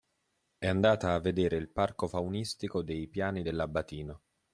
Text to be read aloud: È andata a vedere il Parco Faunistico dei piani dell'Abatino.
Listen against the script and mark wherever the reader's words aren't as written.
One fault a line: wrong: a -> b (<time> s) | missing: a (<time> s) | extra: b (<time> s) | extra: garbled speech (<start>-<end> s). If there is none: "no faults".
no faults